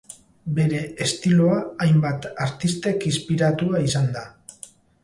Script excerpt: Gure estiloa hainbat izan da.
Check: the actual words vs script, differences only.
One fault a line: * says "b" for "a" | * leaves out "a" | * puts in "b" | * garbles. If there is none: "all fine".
* says "Bere" for "Gure"
* puts in "artistek inspiratua"